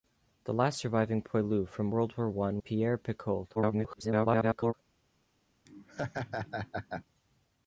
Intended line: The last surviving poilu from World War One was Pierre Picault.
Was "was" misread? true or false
true